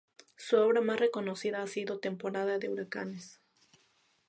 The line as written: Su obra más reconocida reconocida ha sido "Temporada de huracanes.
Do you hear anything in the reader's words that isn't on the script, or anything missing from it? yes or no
yes